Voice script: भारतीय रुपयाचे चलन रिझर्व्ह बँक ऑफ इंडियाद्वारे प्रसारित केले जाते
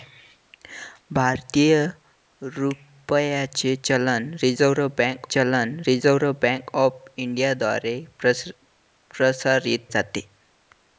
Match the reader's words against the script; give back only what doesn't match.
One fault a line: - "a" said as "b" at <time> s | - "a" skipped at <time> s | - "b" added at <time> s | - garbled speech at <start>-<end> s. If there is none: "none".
- "चलन रिझर्व्ह बँक" added at 5.3 s
- "केले" skipped at 9.9 s